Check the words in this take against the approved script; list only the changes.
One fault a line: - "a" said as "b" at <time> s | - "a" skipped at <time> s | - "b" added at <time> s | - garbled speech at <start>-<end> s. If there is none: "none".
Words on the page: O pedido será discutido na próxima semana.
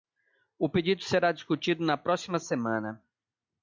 none